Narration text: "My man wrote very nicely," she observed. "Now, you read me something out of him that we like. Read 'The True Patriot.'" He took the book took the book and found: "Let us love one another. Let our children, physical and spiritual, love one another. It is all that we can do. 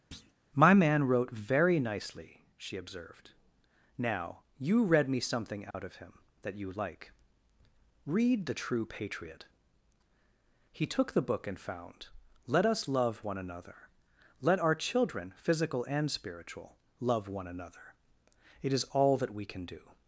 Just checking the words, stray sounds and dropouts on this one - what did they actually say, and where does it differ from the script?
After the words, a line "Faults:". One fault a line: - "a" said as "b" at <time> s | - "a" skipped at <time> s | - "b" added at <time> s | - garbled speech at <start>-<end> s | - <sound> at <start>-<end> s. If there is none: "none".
"My man wrote very nicely," she observed. "Now, you read me something out of him that you like. Read 'The True Patriot.'" He took the book and found: "Let us love one another. Let our children, physical and spiritual, love one another. It is all that we can do.
Faults:
- thud at 0.1-0.3 s
- dropout at 5.7-5.7 s
- "we" said as "you" at 6.5 s
- "took the book" skipped at 11.5 s